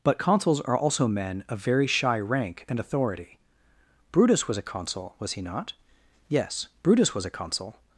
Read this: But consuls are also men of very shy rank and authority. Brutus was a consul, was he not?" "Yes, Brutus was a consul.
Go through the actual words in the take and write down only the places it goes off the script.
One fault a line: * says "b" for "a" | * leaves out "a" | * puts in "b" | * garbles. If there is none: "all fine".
all fine